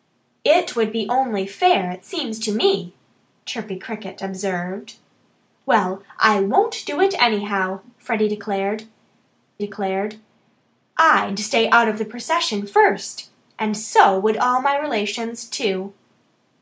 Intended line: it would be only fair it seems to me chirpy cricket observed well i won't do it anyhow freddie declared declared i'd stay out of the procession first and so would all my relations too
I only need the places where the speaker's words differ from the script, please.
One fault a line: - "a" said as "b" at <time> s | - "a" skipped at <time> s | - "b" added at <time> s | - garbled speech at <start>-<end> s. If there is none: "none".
none